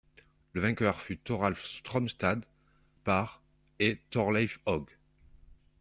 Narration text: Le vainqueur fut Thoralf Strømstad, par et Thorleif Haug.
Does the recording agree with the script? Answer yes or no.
yes